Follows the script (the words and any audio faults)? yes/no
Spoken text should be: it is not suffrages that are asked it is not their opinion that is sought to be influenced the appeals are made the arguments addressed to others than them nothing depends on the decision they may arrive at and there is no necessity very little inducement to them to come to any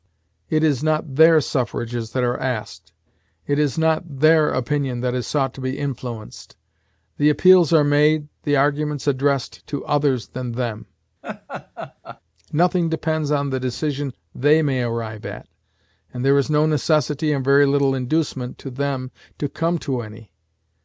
no